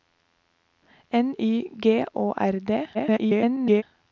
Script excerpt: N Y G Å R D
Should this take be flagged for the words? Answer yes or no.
yes